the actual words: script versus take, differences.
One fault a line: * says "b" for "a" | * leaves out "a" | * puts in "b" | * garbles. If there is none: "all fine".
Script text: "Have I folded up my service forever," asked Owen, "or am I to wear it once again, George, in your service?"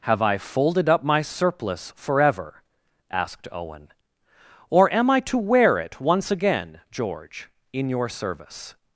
* says "surplice" for "service"